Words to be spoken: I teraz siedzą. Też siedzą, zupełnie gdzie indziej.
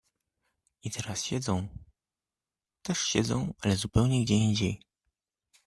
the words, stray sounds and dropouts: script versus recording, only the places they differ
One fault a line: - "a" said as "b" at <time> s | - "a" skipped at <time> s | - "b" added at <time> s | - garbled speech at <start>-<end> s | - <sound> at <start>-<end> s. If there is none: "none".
- "ale" added at 3.6 s